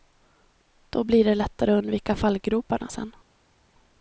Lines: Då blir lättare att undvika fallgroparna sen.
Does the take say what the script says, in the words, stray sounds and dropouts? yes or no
no